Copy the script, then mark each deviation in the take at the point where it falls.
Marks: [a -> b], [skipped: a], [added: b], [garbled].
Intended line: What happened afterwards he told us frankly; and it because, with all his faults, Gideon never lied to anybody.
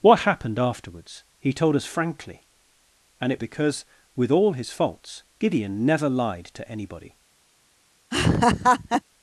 What happened afterwards he told us frankly; and it because, with all his faults, Gideon never lied to anybody.